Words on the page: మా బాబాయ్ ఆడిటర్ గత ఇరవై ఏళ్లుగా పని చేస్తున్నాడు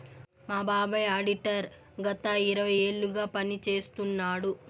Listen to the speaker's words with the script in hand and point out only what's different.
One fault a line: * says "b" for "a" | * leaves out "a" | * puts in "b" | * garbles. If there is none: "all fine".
all fine